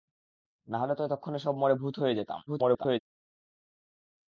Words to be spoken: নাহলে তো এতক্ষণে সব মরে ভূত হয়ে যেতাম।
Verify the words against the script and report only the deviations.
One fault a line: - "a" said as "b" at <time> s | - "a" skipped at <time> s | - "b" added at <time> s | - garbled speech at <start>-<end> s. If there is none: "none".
- garbled speech at 2.5-3.0 s